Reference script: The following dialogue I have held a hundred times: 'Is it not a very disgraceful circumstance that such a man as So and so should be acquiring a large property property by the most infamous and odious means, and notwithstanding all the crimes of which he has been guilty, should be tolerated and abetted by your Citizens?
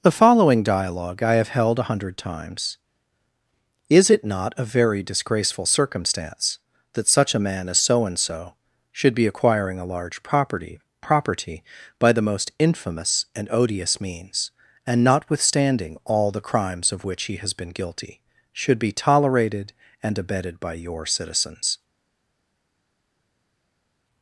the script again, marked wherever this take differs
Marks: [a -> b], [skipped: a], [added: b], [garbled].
The following dialogue I have held a hundred times: 'Is it not a very disgraceful circumstance that such a man as So and so should be acquiring a large property property by the most infamous and odious means, and notwithstanding all the crimes of which he has been guilty, should be tolerated and abetted by your Citizens?